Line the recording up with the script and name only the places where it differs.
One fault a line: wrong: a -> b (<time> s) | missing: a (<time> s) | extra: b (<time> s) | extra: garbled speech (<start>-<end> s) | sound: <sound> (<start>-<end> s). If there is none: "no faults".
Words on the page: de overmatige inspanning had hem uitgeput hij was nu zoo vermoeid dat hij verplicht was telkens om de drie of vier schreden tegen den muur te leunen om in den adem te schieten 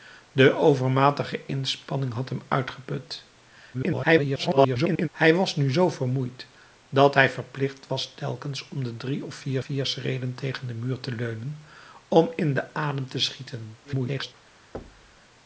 extra: garbled speech (3.7-5.1 s)
extra: vier (9.6 s)
extra: garbled speech (13.8-14.3 s)
sound: thud (14.7-15.2 s)